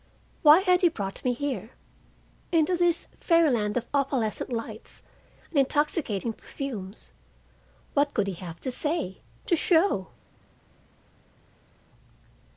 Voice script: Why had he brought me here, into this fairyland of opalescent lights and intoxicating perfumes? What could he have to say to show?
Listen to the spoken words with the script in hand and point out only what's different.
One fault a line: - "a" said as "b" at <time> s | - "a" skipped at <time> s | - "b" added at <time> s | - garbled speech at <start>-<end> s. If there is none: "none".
none